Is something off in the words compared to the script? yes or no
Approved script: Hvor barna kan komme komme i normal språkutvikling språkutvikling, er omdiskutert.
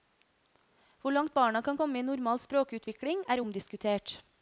yes